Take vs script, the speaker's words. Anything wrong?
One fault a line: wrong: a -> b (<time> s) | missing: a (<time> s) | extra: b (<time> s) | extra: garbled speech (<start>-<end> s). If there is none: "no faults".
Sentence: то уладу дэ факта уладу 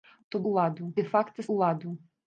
no faults